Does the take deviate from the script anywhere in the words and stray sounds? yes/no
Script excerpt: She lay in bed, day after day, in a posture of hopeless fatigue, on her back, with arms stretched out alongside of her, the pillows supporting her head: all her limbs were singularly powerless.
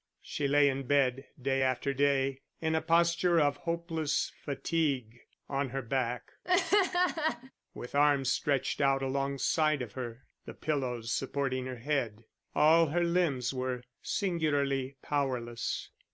yes